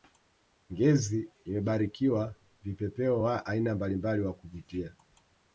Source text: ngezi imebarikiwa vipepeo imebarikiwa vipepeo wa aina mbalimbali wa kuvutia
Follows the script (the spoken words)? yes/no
no